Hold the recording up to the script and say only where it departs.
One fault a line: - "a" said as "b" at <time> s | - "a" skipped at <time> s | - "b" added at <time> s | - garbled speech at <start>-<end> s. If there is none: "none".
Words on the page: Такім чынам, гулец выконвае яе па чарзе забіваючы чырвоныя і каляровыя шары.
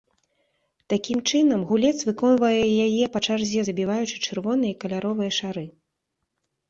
none